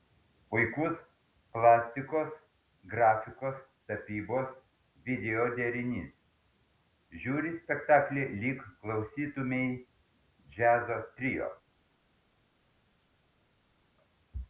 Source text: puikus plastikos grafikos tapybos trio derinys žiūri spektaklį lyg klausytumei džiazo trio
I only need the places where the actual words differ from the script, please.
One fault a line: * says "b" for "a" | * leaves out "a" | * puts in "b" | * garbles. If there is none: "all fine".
* says "video" for "trio"